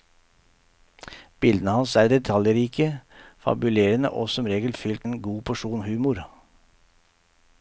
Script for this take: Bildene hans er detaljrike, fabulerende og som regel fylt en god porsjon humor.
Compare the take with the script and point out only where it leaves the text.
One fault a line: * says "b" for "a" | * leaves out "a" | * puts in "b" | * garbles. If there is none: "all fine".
all fine